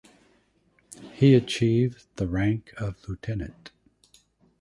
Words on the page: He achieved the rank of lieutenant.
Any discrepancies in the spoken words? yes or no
no